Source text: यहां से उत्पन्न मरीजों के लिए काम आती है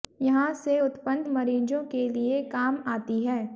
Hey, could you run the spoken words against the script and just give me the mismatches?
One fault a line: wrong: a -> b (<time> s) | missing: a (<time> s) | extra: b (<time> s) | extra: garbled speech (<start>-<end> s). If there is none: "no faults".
no faults